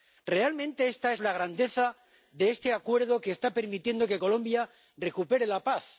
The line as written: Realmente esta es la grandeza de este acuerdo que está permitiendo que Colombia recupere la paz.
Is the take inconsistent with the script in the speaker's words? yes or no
no